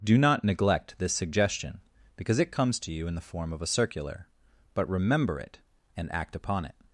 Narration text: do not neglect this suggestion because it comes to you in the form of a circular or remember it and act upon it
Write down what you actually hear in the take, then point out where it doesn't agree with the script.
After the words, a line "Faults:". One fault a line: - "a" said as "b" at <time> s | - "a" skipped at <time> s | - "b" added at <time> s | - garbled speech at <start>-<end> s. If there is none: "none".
do not neglect this suggestion because it comes to you in the form of a circular but remember it and act upon it
Faults:
- "or" said as "but" at 4.7 s